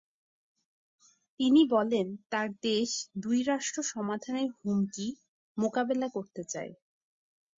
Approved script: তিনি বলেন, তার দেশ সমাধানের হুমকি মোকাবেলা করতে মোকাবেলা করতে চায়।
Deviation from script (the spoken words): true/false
true